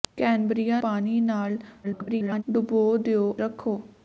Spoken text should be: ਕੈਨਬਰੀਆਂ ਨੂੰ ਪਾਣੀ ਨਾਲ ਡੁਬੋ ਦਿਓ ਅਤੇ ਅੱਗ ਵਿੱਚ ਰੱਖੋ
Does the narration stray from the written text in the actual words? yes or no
yes